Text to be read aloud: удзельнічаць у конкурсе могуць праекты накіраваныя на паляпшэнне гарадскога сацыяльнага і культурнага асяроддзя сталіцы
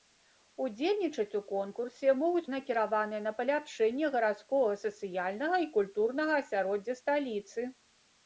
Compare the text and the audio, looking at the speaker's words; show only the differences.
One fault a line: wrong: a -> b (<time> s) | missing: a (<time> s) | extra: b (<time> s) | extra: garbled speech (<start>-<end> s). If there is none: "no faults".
missing: праекты (2.5 s)